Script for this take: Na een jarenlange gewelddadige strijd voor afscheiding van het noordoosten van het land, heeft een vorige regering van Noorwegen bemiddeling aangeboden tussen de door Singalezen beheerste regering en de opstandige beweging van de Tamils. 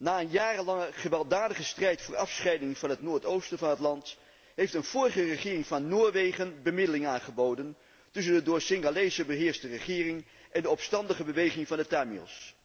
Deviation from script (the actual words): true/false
false